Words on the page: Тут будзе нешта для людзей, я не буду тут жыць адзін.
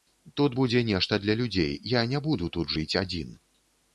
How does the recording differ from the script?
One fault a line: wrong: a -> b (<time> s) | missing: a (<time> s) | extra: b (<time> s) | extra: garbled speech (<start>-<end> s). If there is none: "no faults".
no faults